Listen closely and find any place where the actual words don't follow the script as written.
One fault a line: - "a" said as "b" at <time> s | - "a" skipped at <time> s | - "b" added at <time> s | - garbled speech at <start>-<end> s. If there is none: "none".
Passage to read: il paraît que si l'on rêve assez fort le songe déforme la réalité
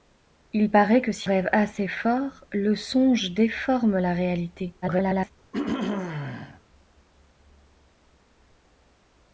- "l'on" skipped at 1.3 s
- garbled speech at 4.8-5.3 s